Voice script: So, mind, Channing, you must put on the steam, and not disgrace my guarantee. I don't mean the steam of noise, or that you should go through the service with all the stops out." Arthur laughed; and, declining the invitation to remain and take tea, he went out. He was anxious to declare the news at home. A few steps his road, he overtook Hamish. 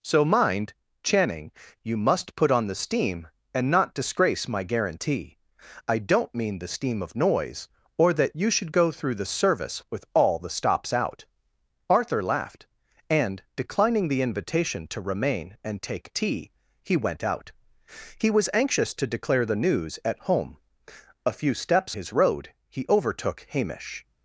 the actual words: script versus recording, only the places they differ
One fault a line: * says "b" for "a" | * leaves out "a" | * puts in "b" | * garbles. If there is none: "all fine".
all fine